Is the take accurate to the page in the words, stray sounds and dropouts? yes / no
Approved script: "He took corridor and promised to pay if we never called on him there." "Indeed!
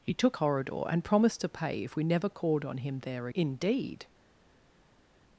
yes